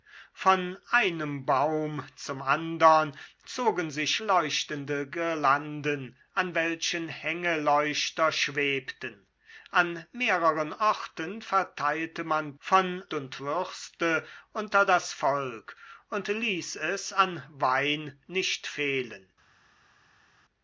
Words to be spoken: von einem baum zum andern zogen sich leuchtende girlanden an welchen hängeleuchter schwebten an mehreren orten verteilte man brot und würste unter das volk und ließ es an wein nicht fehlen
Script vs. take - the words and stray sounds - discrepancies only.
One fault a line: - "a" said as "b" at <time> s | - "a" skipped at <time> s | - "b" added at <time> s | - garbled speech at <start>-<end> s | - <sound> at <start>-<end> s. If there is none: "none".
- "brot" said as "von" at 12.6 s